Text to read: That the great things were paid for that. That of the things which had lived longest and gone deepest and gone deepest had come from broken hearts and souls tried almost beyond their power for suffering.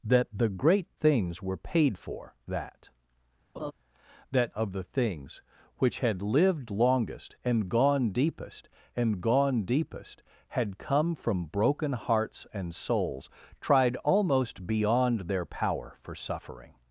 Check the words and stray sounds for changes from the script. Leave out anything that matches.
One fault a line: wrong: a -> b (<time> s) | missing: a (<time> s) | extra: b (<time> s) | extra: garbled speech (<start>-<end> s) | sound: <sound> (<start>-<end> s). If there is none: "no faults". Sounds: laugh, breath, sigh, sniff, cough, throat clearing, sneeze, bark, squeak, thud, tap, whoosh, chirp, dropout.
sound: laugh (3.6-3.7 s)